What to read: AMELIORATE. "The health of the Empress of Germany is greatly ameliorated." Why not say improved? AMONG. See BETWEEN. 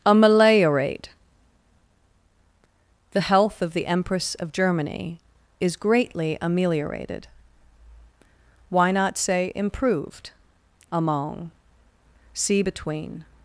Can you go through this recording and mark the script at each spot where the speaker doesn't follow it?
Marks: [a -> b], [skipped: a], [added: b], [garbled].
AMELIORATE. "The health of the Empress of Germany is greatly ameliorated." Why not say improved? AMONG. See BETWEEN.